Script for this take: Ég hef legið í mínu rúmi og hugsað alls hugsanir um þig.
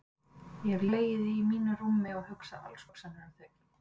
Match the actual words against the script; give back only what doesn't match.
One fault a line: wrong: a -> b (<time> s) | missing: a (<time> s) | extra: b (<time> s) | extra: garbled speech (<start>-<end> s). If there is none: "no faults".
no faults